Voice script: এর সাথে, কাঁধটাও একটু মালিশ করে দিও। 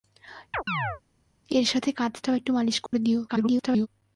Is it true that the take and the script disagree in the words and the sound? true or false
true